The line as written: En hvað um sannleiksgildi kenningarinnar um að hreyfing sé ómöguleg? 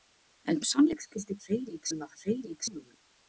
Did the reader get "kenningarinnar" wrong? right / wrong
wrong